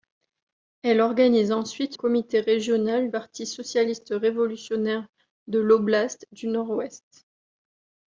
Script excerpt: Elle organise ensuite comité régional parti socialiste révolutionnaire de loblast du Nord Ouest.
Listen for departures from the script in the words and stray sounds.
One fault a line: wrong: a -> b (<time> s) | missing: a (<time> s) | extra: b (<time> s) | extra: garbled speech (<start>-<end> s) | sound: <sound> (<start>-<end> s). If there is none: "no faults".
no faults